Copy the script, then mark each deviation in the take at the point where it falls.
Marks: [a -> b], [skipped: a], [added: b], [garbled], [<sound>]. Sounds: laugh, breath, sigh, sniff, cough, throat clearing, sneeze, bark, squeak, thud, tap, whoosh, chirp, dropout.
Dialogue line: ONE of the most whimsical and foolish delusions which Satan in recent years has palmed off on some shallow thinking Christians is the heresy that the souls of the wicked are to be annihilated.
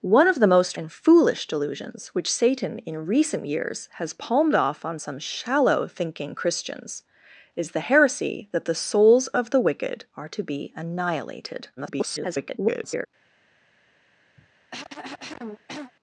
ONE of the most [skipped: whimsical] and foolish delusions which Satan in recent years has palmed off on some shallow thinking Christians is the heresy that the souls of the wicked are to be annihilated. [garbled] [cough]